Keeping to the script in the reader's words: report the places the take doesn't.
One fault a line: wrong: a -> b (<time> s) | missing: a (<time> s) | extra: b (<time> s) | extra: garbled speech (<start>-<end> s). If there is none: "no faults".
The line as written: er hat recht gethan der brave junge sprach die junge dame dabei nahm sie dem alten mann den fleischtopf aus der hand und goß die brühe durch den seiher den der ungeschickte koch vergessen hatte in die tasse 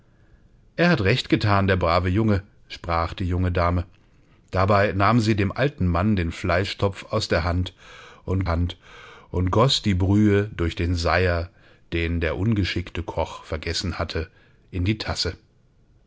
extra: hand und (8.5 s)